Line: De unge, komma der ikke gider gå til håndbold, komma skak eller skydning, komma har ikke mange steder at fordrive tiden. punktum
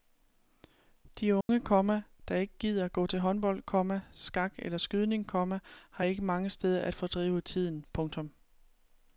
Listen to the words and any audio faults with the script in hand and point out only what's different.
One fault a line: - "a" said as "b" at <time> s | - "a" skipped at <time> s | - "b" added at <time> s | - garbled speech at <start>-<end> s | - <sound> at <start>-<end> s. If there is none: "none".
- dropout at 1.4-1.5 s